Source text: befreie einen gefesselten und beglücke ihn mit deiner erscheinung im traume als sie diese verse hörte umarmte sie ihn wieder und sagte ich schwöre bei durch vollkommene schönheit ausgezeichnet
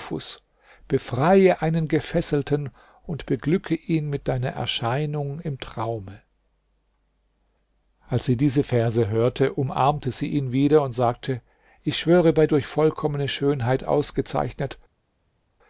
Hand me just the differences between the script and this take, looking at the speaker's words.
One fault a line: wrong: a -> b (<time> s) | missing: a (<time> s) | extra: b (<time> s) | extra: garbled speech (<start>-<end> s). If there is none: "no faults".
no faults